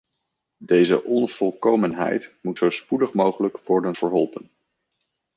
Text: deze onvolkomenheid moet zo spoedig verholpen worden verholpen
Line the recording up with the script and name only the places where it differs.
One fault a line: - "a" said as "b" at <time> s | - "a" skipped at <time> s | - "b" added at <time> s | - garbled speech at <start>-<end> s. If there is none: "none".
- "verholpen" said as "mogelijk" at 3.1 s